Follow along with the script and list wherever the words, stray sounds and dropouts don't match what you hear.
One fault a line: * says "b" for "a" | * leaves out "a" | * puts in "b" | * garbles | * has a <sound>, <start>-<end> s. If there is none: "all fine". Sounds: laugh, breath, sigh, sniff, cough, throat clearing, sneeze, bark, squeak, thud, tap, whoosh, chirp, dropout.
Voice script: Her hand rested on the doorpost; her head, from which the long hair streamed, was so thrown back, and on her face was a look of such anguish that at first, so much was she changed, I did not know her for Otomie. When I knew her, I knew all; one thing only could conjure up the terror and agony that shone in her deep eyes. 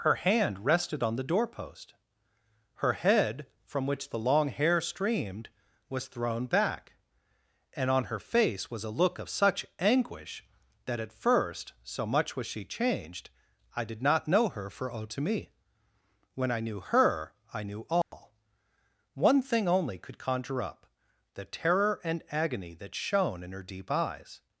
* leaves out "so"
* has a dropout, 18.0-18.1 s